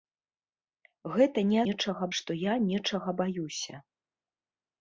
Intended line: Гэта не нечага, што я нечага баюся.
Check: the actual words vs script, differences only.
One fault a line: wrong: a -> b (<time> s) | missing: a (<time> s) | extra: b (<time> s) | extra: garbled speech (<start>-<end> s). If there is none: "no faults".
no faults